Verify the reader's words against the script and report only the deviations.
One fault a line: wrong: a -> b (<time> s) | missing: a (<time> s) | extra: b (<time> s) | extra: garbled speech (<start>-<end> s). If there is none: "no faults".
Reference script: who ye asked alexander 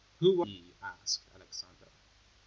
no faults